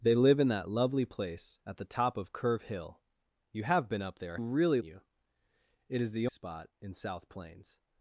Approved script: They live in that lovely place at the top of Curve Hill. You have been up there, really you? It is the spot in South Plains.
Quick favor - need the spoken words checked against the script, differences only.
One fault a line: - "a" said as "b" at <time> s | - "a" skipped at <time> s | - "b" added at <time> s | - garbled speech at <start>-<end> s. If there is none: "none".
none